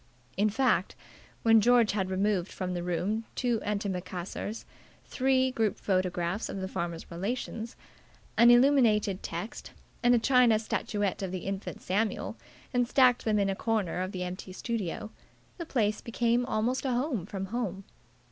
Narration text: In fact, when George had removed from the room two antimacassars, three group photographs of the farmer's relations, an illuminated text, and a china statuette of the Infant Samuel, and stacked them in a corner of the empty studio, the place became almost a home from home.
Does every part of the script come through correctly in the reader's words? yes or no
yes